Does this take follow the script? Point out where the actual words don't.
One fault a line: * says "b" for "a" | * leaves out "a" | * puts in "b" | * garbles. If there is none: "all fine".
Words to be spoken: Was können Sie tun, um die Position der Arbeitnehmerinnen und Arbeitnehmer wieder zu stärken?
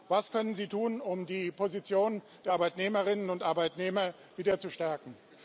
all fine